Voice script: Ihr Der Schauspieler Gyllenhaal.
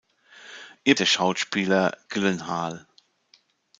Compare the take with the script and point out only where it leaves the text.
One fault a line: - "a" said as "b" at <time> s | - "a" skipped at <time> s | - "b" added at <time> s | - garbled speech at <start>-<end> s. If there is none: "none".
none